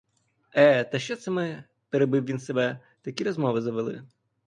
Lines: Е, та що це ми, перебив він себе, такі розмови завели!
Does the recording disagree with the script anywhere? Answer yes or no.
no